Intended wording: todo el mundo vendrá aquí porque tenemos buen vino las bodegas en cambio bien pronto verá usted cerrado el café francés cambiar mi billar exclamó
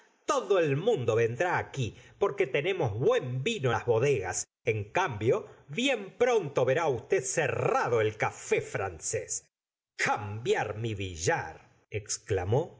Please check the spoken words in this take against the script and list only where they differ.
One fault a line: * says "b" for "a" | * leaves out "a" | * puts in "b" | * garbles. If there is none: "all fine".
all fine